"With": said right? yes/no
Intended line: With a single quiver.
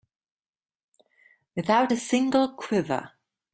no